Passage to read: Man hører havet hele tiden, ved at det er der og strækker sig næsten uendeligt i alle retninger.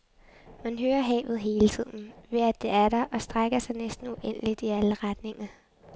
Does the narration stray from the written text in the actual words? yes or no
no